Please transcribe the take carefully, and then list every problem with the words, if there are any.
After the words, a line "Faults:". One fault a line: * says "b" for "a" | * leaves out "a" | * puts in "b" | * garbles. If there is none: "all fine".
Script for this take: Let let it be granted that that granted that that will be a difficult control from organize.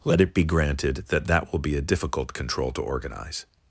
Let it be granted that that will be a difficult control to organize.
Faults:
* leaves out "let"
* leaves out "granted that that"
* says "to" for "from"